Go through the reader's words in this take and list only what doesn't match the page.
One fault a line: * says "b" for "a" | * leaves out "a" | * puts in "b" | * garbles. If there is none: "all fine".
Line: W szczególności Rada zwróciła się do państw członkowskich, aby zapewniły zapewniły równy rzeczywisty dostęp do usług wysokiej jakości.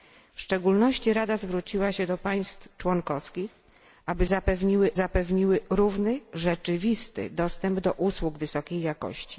all fine